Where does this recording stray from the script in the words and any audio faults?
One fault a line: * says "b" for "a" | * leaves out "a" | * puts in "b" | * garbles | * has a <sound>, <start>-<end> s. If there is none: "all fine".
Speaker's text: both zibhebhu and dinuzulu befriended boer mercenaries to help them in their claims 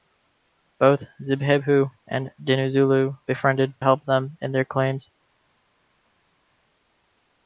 * leaves out "boer mercenaries to"